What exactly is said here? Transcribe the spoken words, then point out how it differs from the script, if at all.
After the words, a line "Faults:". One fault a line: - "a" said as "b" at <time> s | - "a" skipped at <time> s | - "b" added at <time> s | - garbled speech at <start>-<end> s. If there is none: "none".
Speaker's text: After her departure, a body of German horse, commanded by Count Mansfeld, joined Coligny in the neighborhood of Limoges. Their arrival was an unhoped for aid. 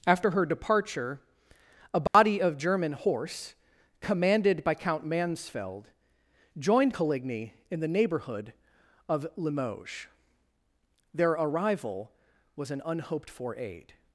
After her departure, a body of German horse, commanded by Count Mansfeld, joined Coligny in the neighborhood of Limoges. Their arrival was an unhoped for aid.
Faults:
none